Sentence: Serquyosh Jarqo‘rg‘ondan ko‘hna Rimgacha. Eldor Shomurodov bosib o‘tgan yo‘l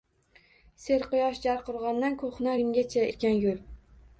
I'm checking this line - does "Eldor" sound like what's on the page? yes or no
no